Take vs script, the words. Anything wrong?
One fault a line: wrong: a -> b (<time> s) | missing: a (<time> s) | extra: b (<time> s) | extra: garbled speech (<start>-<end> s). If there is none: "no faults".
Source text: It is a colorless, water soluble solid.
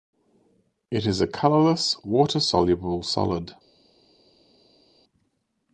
no faults